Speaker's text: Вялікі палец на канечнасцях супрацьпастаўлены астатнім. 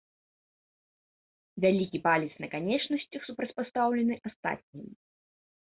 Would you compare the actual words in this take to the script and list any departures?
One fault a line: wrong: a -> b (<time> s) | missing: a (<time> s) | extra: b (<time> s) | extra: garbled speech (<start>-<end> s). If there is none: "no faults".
no faults